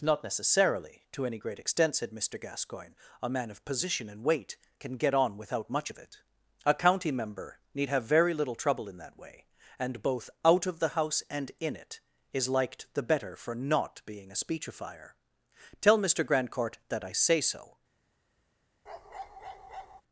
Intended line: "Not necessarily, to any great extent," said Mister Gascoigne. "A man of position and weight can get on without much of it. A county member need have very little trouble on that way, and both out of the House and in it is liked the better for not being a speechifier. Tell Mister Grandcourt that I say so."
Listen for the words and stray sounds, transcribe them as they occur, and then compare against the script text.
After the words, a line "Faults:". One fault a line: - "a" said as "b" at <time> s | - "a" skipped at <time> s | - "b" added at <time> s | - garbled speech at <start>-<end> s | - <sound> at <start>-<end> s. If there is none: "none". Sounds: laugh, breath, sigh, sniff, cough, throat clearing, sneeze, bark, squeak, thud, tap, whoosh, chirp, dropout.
"Not necessarily, to any great extent," said Mister Gascoigne. "A man of position and weight can get on without much of it. A county member need have very little trouble in that way, and both out of the House and in it is liked the better for not being a speechifier. Tell Mister Grandcourt that I say so."
Faults:
- "on" said as "in" at 8.9 s
- bark at 18.9-20.0 s